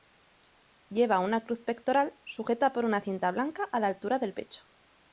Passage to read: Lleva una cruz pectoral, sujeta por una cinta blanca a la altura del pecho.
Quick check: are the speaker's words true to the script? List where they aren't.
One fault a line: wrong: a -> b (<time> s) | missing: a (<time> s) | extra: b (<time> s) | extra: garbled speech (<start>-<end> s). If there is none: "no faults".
no faults